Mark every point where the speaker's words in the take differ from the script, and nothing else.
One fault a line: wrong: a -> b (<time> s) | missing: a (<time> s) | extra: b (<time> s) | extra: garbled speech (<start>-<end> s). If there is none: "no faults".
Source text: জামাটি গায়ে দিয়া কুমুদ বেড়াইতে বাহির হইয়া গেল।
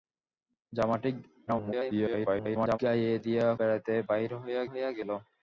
extra: garbled speech (1.5-2.8 s)
missing: কুমুদ (3.5 s)
extra: হইয়া (4.7 s)